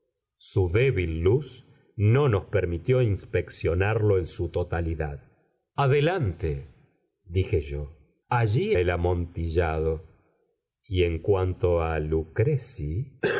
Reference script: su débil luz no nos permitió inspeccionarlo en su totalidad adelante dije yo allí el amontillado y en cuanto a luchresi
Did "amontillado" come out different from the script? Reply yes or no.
no